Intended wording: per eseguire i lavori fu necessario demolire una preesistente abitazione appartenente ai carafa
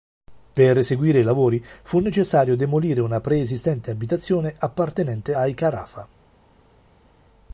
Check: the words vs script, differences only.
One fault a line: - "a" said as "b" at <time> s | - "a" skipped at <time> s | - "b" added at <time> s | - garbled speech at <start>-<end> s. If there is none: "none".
none